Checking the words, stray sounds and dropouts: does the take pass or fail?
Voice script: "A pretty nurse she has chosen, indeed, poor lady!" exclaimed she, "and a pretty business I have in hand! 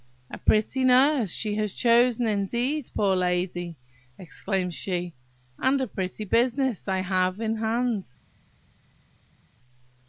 pass